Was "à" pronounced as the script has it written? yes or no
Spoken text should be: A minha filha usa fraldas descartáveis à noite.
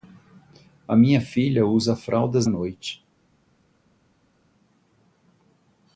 no